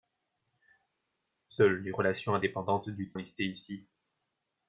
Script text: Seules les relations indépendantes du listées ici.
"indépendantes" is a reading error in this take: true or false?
false